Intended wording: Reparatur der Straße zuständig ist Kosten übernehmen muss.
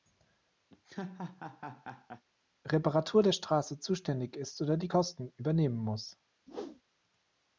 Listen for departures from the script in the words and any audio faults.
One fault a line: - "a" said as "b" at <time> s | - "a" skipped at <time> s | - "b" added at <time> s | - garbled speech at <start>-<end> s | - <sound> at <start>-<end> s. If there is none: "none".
- laugh at 0.7-2.2 s
- "oder die" added at 4.6 s
- whoosh at 6.5-6.8 s